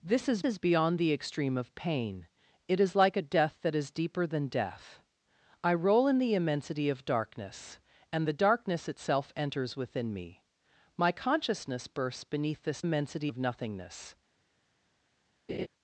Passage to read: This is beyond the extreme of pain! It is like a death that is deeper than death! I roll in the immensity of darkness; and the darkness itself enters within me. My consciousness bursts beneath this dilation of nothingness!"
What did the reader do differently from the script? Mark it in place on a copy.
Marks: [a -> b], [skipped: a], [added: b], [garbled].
This is [added: is] beyond the extreme of pain! It is like a death that is deeper than death! I roll in the immensity of darkness; and the darkness itself enters within me. My consciousness bursts beneath this [dilation -> immensity] of nothingness!"